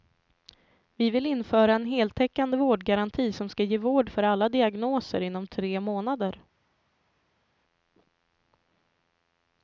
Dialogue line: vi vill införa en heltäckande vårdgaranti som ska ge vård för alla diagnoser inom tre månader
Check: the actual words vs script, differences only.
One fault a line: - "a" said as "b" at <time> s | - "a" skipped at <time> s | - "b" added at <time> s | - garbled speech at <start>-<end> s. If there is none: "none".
none